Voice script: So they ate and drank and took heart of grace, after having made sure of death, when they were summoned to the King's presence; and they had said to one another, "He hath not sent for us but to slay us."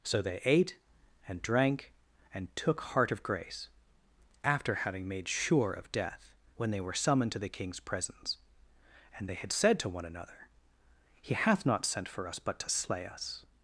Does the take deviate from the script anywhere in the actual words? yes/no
no